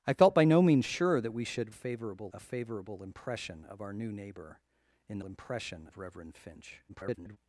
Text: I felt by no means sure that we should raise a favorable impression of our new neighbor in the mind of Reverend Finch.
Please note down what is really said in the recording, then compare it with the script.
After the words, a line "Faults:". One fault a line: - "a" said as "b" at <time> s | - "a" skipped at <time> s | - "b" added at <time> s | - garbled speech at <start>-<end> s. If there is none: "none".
I felt by no means sure that we should favorable a favorable impression of our new neighbor in the impression of Reverend Finch. [garbled]
Faults:
- "raise" said as "favorable" at 1.7 s
- "mind" said as "impression" at 5.2 s
- garbled speech at 6.9-7.4 s